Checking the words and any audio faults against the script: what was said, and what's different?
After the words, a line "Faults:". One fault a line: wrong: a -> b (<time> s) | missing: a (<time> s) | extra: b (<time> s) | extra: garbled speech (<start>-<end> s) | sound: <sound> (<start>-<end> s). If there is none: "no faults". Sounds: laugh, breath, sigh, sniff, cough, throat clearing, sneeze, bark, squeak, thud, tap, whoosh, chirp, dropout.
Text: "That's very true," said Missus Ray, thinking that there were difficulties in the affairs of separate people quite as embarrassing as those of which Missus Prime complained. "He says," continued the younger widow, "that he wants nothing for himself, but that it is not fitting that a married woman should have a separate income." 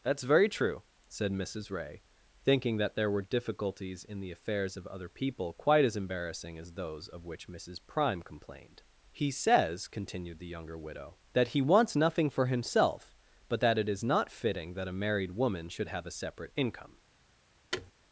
"That's very true," said Missus Ray, thinking that there were difficulties in the affairs of other people quite as embarrassing as those of which Missus Prime complained. "He says," continued the younger widow, "that he wants nothing for himself, but that it is not fitting that a married woman should have a separate income."
Faults:
wrong: separate -> other (4.9 s)
sound: thud (17.7-17.9 s)